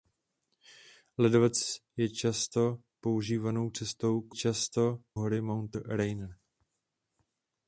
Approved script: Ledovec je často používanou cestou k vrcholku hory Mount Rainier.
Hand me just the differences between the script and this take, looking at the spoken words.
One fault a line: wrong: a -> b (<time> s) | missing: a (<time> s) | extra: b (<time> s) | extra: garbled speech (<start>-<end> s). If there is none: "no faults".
wrong: vrcholku -> často (4.3 s)